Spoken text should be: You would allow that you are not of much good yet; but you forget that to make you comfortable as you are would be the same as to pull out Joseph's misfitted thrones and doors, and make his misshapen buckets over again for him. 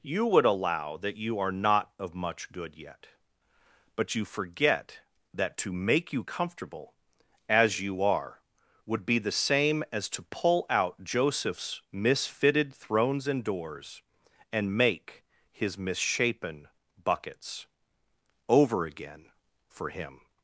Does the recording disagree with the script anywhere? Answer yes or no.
no